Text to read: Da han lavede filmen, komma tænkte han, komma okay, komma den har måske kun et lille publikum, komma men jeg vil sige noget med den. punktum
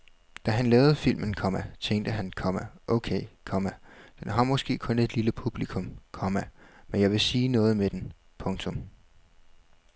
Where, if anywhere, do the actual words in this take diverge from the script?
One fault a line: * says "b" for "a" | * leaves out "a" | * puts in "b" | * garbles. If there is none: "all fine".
all fine